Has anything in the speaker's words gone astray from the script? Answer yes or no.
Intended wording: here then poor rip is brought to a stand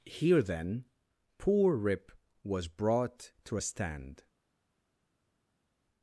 yes